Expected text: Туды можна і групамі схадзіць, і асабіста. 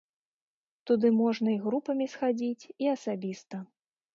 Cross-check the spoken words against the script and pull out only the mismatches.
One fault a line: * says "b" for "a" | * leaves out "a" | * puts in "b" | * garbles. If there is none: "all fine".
all fine